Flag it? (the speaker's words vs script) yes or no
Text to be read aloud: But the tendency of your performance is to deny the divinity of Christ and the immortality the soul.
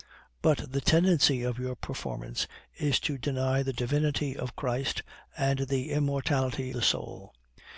no